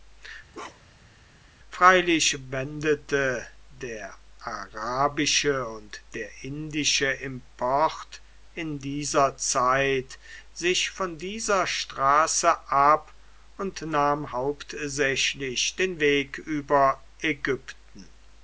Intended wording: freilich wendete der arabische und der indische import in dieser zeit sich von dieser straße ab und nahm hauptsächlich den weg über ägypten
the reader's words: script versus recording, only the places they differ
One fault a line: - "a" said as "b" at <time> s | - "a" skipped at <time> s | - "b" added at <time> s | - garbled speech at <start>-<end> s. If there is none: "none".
none